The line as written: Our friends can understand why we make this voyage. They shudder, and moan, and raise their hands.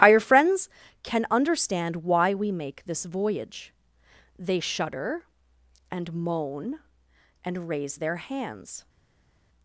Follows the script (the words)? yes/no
yes